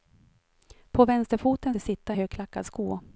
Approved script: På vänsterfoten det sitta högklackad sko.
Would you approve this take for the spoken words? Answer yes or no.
yes